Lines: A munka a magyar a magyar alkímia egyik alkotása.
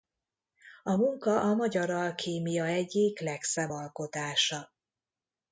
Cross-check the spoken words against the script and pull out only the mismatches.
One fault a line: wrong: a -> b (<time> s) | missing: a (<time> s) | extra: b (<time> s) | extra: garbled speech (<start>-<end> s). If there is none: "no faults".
missing: a magyar (1.9 s)
extra: legszebb (3.2 s)